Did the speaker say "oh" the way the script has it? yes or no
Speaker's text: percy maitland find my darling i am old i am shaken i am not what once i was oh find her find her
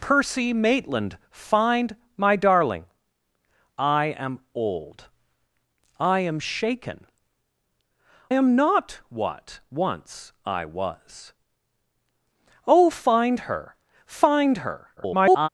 yes